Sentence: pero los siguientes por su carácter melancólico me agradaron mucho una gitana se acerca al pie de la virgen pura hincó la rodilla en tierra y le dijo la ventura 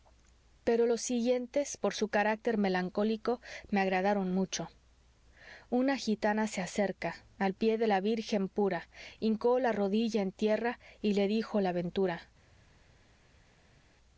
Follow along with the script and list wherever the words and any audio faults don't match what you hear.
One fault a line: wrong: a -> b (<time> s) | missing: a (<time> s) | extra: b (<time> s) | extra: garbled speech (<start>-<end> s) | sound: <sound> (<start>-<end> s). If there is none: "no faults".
no faults